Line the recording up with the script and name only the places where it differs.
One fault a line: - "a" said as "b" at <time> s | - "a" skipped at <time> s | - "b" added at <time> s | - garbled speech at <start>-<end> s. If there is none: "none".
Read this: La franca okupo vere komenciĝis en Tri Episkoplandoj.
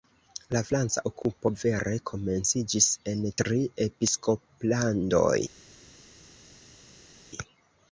none